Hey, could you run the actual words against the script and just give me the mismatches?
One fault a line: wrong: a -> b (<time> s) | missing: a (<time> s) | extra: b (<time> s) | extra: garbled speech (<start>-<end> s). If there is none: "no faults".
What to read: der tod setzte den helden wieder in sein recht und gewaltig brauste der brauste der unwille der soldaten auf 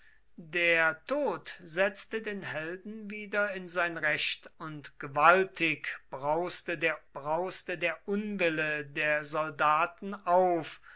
no faults